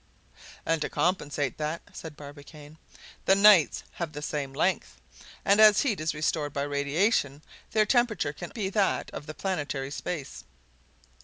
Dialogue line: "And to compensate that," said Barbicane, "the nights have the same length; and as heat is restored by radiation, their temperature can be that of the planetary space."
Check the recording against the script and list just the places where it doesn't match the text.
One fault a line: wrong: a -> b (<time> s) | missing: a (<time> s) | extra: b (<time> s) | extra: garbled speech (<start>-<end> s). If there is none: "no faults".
no faults